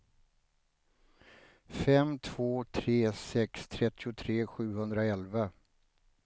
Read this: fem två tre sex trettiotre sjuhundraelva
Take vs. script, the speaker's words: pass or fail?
pass